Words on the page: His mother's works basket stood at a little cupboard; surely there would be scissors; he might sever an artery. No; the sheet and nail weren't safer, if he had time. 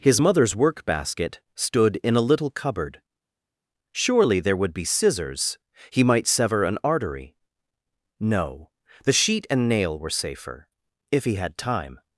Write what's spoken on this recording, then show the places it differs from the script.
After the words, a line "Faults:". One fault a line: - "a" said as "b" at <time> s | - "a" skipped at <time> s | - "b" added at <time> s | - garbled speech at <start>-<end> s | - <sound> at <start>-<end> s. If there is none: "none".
His mother's work basket stood in a little cupboard; surely there would be scissors; he might sever an artery. No; the sheet and nail were safer, if he had time.
Faults:
- "works" said as "work" at 0.5 s
- "at" said as "in" at 2.0 s
- "weren't" said as "were" at 10.0 s